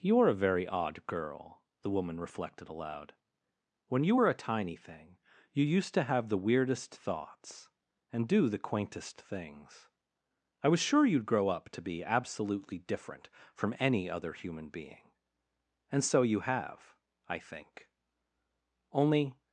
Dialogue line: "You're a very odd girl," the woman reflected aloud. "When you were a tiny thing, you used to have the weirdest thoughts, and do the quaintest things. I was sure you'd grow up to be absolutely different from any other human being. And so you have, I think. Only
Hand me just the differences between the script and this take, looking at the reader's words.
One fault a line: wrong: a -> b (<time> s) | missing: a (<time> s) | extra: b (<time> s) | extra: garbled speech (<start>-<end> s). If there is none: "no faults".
no faults